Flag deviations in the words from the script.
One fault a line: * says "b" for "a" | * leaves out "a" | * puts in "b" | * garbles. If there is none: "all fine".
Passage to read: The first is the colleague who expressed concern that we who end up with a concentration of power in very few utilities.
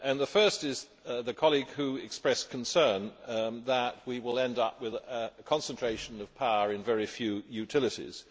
* says "will" for "who"